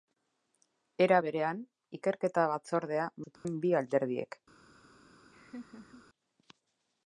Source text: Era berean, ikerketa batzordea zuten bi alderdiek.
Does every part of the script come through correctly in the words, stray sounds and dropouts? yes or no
no